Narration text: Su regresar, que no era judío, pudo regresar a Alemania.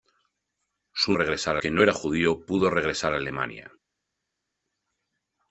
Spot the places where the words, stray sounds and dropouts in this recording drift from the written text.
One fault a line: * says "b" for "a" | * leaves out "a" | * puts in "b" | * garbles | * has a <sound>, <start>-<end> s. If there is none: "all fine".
all fine